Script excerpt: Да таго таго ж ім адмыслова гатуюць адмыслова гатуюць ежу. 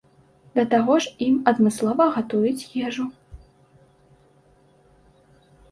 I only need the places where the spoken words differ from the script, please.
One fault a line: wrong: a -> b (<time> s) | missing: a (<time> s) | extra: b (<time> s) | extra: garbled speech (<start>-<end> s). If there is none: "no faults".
missing: таго (0.9 s)
missing: адмыслова гатуюць (2.7 s)